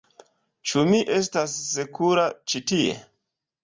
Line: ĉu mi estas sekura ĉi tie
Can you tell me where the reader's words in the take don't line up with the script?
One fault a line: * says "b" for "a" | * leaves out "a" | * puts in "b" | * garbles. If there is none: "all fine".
all fine